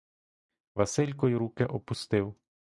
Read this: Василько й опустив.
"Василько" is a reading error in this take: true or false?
false